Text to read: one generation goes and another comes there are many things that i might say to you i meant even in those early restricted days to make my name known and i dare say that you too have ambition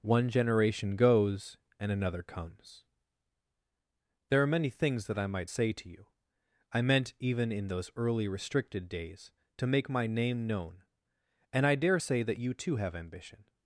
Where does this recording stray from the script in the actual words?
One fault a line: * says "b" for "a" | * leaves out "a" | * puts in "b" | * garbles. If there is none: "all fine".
all fine